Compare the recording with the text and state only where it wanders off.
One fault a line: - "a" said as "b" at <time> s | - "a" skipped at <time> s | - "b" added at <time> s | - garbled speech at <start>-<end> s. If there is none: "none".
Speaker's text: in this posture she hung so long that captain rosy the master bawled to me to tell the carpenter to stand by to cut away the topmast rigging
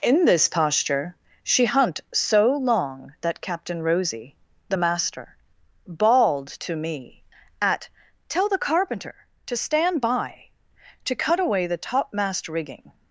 - "hung" said as "hunt" at 1.6 s
- "to" said as "at" at 7.6 s